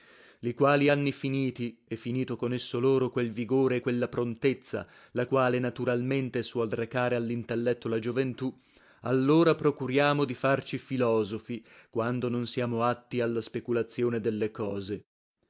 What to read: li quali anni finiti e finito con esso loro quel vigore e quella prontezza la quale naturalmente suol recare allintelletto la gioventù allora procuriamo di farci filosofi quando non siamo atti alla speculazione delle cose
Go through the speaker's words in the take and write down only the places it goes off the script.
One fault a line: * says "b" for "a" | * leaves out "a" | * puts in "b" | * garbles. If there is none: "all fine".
all fine